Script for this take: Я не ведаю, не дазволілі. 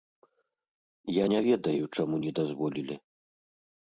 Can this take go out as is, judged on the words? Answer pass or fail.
fail